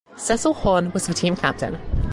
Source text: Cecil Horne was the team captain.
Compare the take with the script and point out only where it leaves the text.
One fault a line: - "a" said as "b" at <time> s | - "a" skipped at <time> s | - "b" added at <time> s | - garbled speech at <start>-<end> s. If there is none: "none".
none